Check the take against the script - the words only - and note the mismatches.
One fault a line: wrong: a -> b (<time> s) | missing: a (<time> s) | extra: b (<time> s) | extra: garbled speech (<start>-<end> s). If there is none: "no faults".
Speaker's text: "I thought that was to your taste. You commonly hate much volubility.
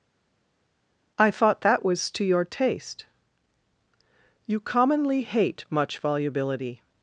no faults